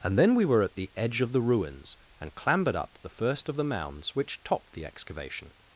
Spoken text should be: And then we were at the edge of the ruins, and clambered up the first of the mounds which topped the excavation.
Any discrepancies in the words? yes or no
no